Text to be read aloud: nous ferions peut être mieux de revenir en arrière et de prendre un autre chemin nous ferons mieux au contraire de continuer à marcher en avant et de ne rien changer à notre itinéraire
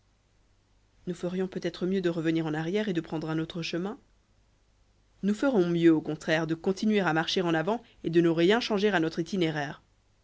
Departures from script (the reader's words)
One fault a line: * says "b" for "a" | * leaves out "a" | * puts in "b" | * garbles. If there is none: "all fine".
all fine